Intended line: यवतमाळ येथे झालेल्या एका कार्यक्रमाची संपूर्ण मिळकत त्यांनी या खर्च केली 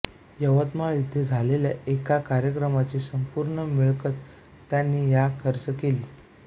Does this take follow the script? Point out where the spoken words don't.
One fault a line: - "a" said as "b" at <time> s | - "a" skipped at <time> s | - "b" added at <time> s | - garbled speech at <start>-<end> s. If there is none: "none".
none